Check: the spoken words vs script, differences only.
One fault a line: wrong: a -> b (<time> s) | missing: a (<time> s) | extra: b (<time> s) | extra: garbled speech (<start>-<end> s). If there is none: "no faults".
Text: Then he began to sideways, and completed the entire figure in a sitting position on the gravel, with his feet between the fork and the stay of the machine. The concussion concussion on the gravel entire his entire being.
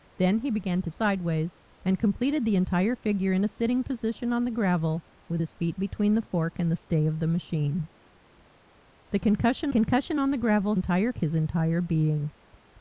no faults